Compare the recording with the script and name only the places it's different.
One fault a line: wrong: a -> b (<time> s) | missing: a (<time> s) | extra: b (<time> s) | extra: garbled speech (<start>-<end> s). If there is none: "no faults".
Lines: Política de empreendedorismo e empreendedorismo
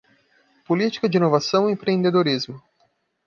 wrong: empreendedorismo -> inovação (1.2 s)